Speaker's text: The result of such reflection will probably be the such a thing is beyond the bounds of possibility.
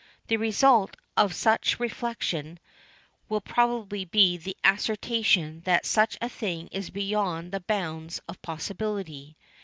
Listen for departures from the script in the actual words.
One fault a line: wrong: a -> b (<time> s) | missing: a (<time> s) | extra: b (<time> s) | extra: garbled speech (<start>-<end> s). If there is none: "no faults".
extra: assertion that (4.6 s)